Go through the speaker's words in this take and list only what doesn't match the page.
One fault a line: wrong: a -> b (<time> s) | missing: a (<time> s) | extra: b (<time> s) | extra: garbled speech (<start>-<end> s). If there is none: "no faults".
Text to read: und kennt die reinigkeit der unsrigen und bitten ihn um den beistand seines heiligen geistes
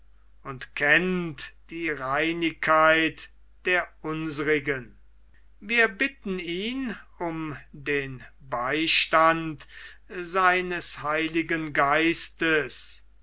wrong: und -> wir (5.6 s)